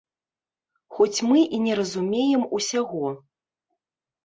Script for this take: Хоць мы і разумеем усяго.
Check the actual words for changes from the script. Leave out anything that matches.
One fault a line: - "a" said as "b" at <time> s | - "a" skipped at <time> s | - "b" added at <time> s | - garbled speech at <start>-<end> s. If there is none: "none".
- "не" added at 1.7 s